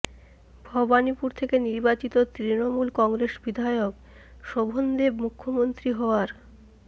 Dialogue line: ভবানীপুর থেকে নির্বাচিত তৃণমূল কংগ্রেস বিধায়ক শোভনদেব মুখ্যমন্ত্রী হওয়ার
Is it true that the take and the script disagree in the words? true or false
false